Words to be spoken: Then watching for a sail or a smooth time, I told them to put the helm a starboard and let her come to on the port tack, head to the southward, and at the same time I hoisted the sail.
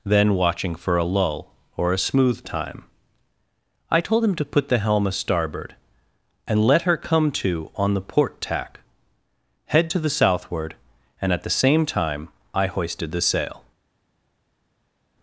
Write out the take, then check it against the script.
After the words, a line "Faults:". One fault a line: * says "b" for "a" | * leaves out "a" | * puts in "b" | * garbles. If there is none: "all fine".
Then watching for a lull or a smooth time, I told him to put the helm a starboard and let her come to on the port tack, head to the southward, and at the same time I hoisted the sail.
Faults:
* says "lull" for "sail"
* says "him" for "them"